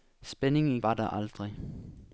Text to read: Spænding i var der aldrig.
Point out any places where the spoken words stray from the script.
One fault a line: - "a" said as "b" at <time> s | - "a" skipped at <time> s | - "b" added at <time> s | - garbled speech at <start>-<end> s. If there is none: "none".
none